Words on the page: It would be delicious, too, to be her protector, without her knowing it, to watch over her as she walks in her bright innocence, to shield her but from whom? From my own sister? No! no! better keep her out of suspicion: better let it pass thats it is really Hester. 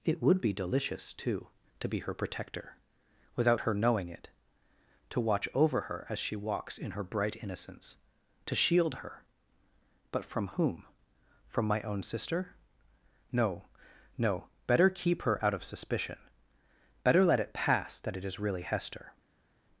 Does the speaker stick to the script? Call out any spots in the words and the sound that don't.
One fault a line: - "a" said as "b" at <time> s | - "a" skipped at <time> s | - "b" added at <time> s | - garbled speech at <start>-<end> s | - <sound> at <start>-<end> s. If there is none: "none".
- "thats" said as "that" at 18.0 s